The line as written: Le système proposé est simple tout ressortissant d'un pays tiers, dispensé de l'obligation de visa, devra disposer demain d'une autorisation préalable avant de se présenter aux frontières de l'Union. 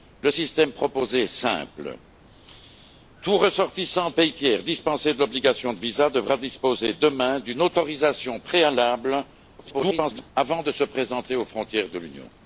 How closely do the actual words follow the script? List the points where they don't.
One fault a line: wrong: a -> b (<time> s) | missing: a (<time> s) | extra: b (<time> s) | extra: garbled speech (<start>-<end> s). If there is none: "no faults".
missing: d'un (4.1 s)
extra: garbled speech (9.6-10.3 s)